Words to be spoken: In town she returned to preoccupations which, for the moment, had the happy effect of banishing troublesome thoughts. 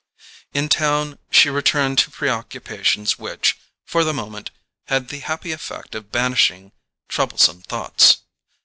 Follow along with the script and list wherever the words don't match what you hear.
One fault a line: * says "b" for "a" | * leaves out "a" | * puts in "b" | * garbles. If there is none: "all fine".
all fine